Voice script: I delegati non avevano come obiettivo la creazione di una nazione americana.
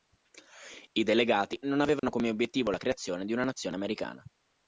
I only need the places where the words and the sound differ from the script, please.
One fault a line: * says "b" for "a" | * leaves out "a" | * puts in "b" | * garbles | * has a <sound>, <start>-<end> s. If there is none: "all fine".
* has a dropout, 2.0-2.0 s